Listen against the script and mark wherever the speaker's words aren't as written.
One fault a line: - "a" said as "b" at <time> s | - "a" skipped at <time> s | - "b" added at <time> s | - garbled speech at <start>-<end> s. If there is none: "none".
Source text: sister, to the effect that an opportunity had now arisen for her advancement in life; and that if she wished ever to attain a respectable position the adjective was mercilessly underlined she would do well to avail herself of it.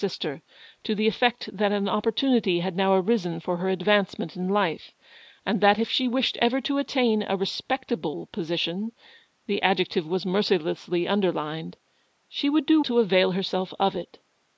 - "well" skipped at 12.8 s